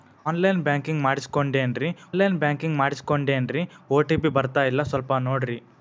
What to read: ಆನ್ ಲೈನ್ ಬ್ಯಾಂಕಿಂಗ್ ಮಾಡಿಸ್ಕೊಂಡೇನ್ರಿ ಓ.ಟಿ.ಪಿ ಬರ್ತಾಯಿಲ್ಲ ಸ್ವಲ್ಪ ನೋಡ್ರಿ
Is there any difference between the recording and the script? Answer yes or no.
yes